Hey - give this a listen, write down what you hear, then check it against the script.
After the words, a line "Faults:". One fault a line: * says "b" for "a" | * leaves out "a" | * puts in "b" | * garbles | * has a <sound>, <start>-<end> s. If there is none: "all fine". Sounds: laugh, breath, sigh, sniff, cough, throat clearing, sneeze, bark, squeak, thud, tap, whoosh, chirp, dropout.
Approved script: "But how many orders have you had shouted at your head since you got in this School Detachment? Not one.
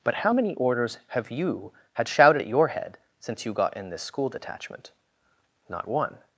"But how many orders have you had shouted at your head since you got in this School Detachment? Not one.
Faults:
all fine